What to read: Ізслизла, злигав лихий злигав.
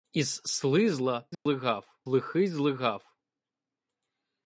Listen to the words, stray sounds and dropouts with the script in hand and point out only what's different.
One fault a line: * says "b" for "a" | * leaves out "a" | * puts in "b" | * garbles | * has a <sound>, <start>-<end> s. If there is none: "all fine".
* has a dropout, 1.3-1.5 s